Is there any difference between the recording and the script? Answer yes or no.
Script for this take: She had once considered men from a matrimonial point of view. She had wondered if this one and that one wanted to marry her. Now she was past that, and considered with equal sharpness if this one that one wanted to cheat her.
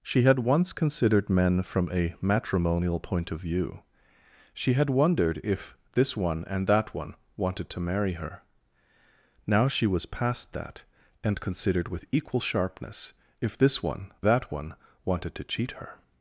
no